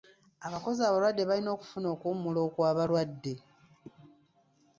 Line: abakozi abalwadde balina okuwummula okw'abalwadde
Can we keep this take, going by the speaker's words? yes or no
no